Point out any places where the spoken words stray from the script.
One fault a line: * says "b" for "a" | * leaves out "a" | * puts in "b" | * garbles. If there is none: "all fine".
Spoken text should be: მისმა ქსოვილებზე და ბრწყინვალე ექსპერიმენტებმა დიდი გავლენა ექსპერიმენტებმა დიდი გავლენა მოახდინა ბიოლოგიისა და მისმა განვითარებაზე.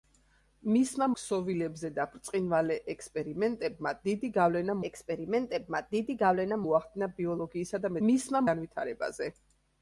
all fine